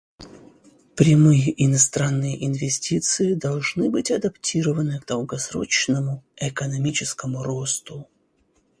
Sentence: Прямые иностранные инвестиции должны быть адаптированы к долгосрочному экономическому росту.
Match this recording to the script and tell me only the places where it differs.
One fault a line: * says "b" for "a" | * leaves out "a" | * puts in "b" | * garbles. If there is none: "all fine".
all fine